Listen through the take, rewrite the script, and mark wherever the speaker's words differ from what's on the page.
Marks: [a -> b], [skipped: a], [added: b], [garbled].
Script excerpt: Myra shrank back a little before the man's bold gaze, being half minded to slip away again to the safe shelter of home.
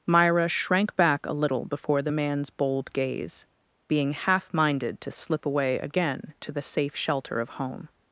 Myra shrank back a little before the man's bold gaze, being half minded to slip away again to the safe shelter of home.